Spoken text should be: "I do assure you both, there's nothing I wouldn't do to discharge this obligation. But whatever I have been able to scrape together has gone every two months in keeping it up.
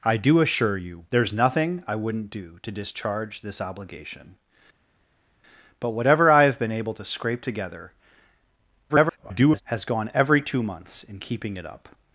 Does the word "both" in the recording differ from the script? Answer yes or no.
yes